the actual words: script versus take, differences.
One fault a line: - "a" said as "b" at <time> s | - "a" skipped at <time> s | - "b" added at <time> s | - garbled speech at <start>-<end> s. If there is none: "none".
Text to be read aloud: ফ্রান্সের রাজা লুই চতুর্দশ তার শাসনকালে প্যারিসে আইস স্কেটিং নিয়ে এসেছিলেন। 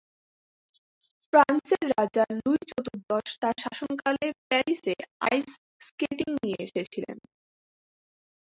none